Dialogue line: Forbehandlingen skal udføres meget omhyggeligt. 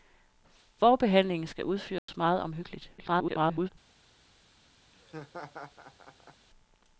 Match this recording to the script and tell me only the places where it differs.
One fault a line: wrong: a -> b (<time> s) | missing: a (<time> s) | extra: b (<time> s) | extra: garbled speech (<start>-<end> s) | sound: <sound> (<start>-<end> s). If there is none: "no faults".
sound: dropout (2.0-2.1 s)
extra: garbled speech (3.0-3.7 s)
sound: laugh (4.9-6.5 s)